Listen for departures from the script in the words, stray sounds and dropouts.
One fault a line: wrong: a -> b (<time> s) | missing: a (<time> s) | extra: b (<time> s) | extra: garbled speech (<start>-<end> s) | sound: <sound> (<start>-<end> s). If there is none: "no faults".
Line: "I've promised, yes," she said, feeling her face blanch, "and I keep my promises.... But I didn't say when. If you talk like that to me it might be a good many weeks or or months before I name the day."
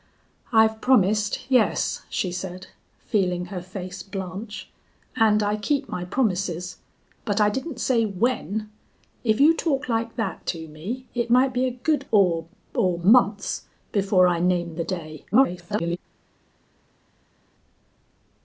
missing: many weeks (12.1 s)
extra: garbled speech (15.3-16.0 s)